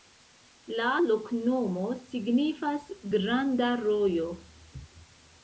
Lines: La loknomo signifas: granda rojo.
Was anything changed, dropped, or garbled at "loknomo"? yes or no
no